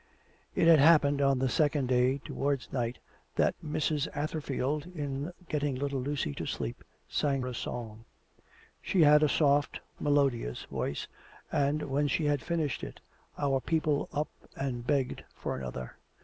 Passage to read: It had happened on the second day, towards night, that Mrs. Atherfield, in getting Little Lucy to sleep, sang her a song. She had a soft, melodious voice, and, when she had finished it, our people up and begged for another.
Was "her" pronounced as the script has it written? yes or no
no